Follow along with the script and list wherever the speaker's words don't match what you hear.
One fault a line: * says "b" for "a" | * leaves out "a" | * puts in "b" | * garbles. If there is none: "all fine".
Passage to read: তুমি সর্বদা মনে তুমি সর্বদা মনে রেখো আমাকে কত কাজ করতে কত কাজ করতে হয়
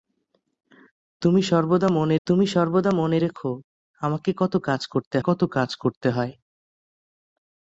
all fine